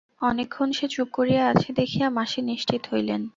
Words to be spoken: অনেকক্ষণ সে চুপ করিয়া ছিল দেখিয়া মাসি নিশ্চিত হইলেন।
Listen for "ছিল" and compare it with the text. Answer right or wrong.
wrong